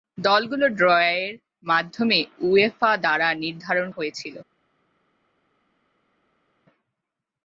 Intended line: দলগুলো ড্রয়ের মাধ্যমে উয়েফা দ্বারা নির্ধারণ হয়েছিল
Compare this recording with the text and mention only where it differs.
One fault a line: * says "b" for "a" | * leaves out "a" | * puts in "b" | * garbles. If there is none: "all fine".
all fine